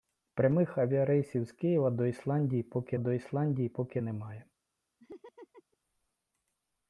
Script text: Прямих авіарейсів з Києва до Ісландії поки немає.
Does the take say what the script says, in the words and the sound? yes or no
no